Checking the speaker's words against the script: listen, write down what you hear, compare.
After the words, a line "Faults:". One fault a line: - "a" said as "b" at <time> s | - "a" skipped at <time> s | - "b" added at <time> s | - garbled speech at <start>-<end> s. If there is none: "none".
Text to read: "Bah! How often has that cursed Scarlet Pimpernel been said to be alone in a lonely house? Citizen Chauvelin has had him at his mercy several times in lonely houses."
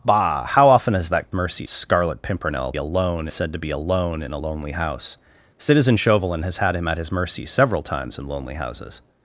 "Bah! How often has that mercy Scarlet Pimpernel alone said to be alone in a lonely house? Citizen Chauvelin has had him at his mercy several times in lonely houses."
Faults:
- "cursed" said as "mercy" at 1.3 s
- "been" said as "alone" at 2.8 s